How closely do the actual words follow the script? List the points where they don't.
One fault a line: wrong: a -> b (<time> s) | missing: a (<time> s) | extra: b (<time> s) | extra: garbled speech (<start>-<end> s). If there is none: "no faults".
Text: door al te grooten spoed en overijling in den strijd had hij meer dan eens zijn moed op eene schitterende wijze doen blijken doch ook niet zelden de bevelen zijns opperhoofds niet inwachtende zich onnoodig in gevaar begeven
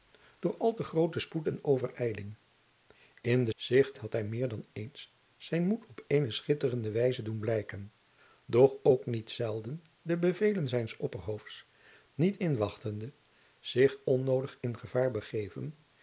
wrong: strijd -> zich (3.5 s)